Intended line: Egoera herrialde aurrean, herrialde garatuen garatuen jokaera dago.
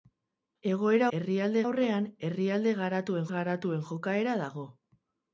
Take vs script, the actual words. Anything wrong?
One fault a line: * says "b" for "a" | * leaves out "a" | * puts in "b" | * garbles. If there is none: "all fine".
all fine